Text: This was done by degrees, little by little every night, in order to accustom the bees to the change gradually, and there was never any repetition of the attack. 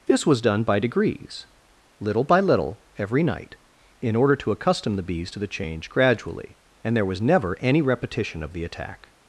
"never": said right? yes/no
yes